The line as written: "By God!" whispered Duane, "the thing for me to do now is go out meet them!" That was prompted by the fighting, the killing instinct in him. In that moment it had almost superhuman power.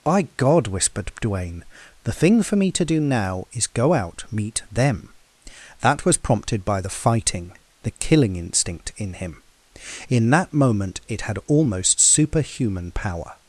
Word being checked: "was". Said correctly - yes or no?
yes